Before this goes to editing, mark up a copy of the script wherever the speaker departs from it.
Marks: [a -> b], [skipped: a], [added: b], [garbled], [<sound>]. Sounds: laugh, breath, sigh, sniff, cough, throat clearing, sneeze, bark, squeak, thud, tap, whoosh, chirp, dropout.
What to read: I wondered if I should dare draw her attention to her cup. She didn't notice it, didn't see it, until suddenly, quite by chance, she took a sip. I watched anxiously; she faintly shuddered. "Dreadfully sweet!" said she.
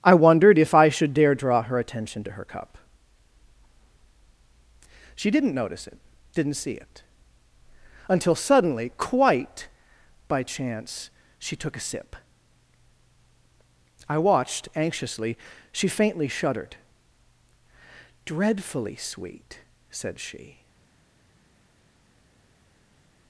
I wondered if I should dare draw her attention to her cup. She didn't notice it, didn't see it, until suddenly, quite by chance, she took a sip. I watched anxiously; she faintly shuddered. "Dreadfully sweet!" said she.